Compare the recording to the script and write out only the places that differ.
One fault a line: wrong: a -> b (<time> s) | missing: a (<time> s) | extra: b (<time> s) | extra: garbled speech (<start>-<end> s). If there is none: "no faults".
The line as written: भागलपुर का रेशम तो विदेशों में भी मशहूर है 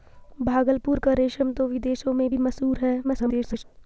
extra: garbled speech (3.0-3.6 s)